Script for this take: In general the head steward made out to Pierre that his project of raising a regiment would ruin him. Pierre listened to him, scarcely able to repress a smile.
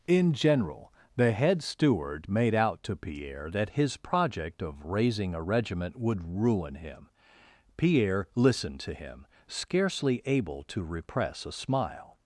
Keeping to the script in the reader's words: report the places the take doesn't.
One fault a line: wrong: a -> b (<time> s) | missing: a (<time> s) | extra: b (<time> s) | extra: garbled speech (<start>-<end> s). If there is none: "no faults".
no faults